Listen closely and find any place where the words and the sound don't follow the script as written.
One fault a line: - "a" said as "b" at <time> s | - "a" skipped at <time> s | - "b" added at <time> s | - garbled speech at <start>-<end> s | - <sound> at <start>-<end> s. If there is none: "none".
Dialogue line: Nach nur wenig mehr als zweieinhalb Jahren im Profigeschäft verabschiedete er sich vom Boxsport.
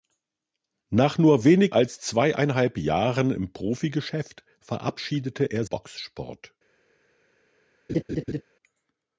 - "mehr" skipped at 1.8 s
- "sich vom" skipped at 5.7 s
- laugh at 7.9-8.4 s